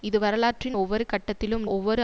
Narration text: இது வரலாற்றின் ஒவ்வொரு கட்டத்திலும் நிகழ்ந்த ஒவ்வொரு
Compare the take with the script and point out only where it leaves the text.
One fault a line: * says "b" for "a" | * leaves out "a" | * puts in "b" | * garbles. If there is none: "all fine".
* leaves out "நிகழ்ந்த"